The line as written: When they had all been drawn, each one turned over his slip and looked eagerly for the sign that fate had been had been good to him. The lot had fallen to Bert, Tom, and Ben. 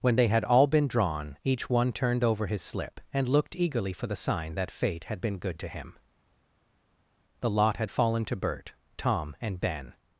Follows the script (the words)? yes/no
no